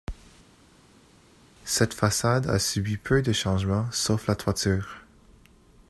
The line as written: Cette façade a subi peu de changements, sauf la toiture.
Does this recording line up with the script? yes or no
yes